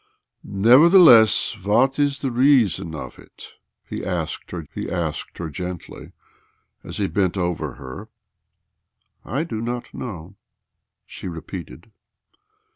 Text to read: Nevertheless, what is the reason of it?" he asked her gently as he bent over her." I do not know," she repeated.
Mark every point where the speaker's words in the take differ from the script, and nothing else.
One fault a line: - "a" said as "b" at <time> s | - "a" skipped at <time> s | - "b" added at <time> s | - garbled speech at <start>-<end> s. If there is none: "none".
- "he asked her" added at 4.7 s